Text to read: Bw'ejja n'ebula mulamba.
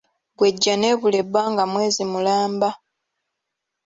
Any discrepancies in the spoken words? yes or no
yes